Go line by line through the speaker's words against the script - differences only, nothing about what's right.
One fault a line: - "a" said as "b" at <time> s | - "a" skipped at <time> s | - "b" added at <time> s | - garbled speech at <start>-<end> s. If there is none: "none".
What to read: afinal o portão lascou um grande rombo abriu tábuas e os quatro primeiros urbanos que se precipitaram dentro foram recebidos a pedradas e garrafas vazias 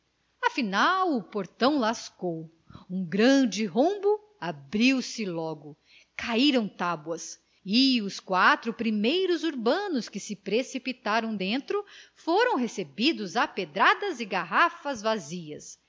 - "se logo caíram" added at 5.0 s